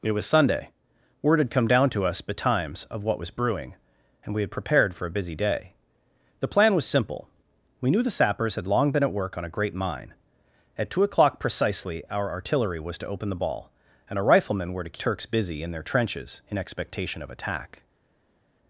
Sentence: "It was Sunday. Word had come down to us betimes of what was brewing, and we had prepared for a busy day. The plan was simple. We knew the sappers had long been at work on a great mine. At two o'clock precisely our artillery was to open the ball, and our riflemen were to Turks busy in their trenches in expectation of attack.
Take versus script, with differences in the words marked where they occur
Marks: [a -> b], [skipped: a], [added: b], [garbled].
"It was Sunday. Word had come down to us betimes of what was brewing, and we had prepared for a busy day. The plan was simple. We knew the sappers had long been at work on a great mine. At two o'clock precisely our artillery was to open the ball, and our riflemen were to Turks busy in their trenches in expectation of attack.